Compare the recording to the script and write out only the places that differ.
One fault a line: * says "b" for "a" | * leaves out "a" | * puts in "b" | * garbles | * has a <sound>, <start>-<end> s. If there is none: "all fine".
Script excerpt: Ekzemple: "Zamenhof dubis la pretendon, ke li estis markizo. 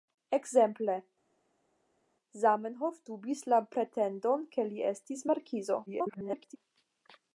* garbles